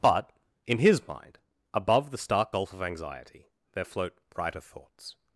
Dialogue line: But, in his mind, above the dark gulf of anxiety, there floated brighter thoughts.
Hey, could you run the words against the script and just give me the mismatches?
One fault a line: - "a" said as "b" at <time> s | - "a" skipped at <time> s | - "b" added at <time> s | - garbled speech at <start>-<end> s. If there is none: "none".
- "dark" said as "stark" at 2.2 s
- "floated" said as "float" at 3.8 s